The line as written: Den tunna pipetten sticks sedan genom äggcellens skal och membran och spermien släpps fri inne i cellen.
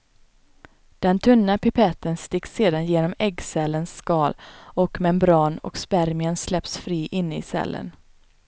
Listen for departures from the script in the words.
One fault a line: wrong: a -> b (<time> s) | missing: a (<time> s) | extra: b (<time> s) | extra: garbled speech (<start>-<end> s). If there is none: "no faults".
no faults